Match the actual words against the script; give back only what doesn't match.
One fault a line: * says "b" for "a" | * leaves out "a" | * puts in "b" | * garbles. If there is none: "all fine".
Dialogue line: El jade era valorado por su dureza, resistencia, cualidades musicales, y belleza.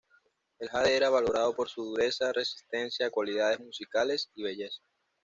all fine